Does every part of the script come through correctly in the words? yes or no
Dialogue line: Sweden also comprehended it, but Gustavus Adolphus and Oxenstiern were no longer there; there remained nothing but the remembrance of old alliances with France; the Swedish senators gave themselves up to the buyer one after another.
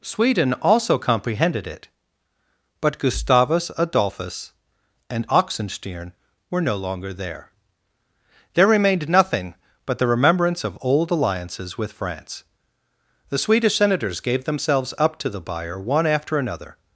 yes